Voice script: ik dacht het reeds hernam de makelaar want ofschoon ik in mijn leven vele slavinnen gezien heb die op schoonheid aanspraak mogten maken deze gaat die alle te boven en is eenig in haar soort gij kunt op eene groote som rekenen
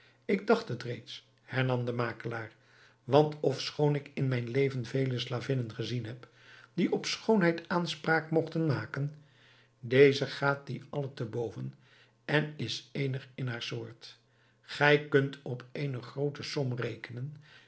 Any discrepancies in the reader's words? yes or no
no